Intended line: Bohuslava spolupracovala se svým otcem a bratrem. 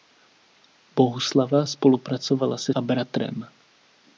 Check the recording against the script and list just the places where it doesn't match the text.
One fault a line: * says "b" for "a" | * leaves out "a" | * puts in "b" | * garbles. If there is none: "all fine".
* leaves out "svým otcem"